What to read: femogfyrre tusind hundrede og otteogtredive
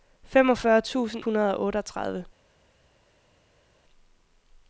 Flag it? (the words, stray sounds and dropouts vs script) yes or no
no